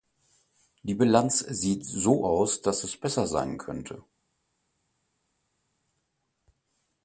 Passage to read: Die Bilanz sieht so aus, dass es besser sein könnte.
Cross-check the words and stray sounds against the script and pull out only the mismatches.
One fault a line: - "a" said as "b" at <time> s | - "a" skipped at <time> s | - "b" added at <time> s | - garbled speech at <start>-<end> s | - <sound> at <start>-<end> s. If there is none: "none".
none